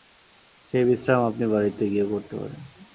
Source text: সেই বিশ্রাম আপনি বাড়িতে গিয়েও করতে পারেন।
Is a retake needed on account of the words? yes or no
no